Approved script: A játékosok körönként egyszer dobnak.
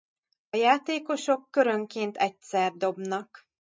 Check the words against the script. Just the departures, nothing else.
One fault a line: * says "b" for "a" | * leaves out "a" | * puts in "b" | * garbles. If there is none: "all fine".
all fine